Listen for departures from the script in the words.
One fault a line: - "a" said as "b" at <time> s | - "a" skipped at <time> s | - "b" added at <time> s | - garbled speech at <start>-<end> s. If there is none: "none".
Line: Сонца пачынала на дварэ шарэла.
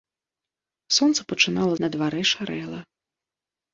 none